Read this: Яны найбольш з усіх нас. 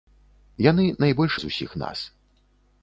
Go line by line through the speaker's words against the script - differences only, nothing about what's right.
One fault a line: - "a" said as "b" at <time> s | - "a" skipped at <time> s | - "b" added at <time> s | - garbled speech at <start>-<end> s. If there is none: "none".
none